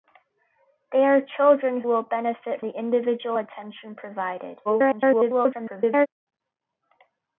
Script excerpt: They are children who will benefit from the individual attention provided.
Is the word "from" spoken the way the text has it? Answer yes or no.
no